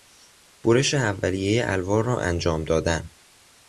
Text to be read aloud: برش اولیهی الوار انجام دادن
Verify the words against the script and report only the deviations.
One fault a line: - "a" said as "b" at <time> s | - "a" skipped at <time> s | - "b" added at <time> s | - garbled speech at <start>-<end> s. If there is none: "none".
- "را" added at 2.0 s